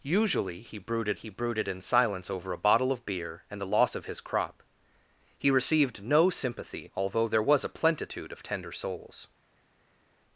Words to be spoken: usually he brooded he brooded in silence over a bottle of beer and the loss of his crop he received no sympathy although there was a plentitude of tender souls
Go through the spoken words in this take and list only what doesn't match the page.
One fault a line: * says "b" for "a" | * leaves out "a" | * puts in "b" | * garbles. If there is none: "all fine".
all fine